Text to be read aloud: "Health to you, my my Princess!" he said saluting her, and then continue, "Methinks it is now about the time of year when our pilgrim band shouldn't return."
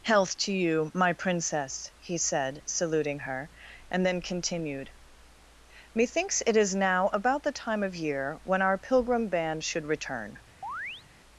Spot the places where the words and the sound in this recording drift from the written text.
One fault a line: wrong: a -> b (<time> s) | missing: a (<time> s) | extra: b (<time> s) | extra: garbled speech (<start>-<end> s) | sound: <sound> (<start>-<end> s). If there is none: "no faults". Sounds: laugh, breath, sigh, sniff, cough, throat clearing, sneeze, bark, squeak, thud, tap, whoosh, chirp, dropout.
missing: my (1.1 s)
wrong: continue -> continued (4.2 s)
wrong: shouldn't -> should (9.6 s)
sound: chirp (10.6-11.0 s)